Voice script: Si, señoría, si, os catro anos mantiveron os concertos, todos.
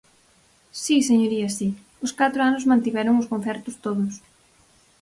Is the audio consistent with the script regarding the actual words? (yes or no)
yes